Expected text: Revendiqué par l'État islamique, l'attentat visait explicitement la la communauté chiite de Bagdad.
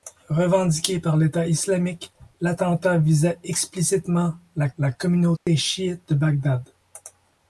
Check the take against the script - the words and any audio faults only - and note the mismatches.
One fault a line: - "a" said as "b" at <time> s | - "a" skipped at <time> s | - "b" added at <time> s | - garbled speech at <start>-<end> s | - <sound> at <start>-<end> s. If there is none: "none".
- dropout at 5.4-5.5 s